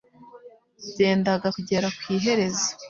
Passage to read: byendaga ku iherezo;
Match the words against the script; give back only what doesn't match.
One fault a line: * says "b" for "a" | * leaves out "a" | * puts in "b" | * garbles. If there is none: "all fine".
* puts in "kugera"